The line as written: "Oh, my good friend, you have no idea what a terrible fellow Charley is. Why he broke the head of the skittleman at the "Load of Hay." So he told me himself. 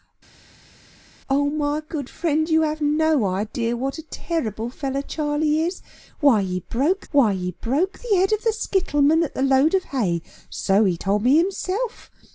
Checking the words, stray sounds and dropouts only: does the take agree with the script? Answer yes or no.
no